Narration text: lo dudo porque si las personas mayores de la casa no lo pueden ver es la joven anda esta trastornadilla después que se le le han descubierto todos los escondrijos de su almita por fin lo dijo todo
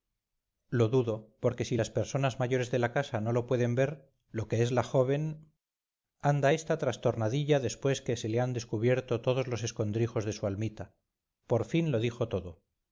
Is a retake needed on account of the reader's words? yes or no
yes